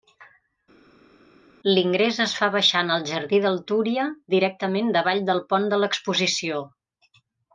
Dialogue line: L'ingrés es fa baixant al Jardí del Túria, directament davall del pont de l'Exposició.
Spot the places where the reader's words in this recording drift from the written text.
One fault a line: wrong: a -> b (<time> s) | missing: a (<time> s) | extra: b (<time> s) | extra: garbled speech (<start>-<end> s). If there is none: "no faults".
no faults